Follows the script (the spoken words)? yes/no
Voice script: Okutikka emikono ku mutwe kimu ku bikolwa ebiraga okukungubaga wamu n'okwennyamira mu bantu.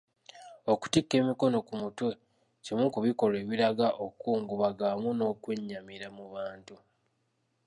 yes